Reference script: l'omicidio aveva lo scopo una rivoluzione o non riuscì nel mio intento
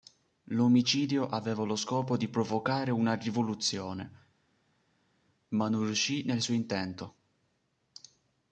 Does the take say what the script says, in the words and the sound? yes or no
no